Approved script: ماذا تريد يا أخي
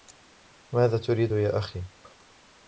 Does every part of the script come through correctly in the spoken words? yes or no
yes